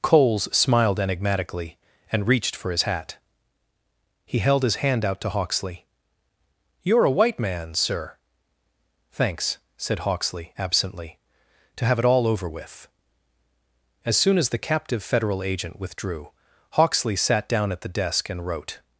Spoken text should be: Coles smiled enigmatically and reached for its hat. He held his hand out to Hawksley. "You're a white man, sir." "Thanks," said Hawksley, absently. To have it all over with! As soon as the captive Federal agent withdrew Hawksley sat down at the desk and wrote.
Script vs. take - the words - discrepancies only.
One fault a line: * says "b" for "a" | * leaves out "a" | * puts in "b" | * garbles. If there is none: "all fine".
* says "his" for "its"